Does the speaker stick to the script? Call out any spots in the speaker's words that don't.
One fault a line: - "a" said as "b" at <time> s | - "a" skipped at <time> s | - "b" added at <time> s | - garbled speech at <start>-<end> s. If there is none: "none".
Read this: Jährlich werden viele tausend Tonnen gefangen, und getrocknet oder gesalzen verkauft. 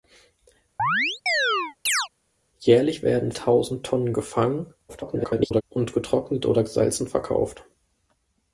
- "viele" skipped at 3.3 s
- garbled speech at 4.9-5.6 s